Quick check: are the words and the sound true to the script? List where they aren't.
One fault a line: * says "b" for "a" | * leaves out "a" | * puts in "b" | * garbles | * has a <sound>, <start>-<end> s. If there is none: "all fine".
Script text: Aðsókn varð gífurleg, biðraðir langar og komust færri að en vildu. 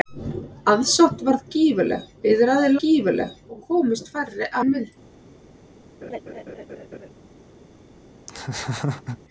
* says "gífurleg" for "langar"
* leaves out "að"
* has a laugh, 6.0-7.1 s
* has a laugh, 8.3-9.2 s